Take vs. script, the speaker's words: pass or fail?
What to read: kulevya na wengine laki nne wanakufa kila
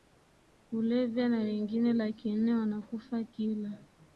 pass